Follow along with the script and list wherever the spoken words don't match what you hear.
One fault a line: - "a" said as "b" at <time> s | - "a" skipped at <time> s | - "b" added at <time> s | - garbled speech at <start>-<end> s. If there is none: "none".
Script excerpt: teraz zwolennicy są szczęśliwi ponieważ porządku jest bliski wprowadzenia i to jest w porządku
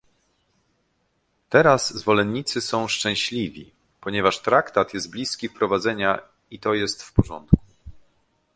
- "porządku" said as "traktat" at 4.4 s